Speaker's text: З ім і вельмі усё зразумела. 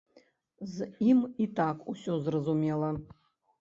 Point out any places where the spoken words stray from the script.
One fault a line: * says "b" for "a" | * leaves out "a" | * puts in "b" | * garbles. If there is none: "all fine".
* says "так" for "вельмі"